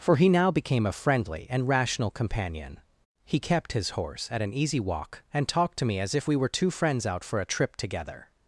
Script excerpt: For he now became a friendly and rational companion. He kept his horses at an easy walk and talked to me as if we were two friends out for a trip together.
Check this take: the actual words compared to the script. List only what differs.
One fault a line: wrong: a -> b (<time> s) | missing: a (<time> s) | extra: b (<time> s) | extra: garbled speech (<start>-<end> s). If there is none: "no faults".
wrong: horses -> horse (3.9 s)